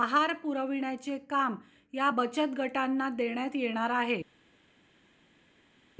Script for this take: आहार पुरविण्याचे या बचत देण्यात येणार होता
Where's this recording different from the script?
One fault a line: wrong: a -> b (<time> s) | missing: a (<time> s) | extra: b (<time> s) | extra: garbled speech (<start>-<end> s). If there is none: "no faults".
extra: काम (1.3 s)
extra: गटांना (2.6 s)
wrong: होता -> आहे (3.9 s)